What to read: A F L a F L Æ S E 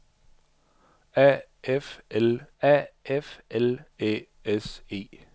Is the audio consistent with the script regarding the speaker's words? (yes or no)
yes